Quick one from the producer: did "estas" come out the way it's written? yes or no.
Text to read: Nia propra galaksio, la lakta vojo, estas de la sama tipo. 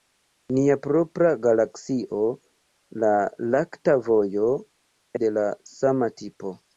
no